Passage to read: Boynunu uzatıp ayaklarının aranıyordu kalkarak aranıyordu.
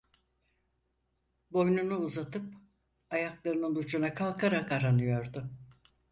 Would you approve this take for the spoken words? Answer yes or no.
no